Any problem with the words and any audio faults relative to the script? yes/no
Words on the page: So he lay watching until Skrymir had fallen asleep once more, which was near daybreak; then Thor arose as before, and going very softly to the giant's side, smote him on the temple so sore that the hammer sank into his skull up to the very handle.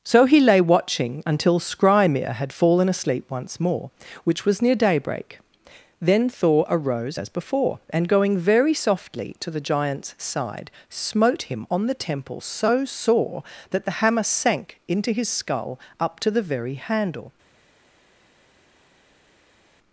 no